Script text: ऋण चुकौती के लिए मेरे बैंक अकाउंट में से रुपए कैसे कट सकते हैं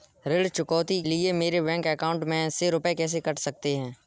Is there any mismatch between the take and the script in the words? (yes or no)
yes